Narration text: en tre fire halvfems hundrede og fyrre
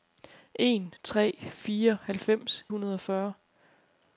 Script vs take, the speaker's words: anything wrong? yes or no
no